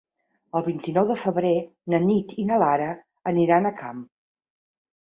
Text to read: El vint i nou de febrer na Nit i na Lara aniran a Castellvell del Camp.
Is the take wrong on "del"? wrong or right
wrong